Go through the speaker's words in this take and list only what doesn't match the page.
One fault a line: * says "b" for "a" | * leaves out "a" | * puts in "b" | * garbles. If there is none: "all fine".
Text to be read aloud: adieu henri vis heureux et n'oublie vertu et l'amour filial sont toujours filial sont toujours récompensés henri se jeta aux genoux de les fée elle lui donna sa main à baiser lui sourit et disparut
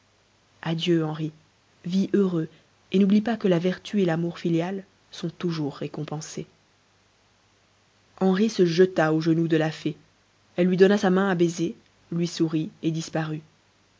* puts in "pas que la"
* leaves out "filial sont toujours"
* says "la" for "les"